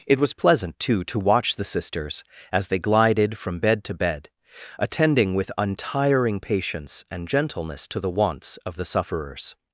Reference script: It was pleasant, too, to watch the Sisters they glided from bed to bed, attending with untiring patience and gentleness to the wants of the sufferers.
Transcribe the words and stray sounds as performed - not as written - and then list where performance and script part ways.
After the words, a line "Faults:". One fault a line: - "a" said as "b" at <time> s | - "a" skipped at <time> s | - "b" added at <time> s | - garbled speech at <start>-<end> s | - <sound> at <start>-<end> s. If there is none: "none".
It was pleasant, too, to watch the Sisters as they glided from bed to bed, attending with untiring patience and gentleness to the wants of the sufferers.
Faults:
- "as" added at 2.5 s